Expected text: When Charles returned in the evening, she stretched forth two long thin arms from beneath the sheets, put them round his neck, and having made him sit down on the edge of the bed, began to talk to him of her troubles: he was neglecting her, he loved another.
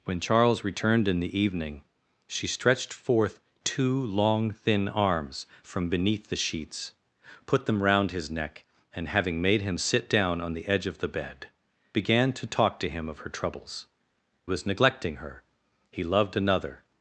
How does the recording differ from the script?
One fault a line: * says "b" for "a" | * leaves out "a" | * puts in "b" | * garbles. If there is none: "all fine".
* leaves out "he"